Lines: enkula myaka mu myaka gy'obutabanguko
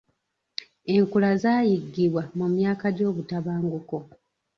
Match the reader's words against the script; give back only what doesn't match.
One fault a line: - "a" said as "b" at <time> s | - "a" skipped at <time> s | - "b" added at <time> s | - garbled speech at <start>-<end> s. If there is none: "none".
- "myaka" said as "zaayiggibwa" at 1.4 s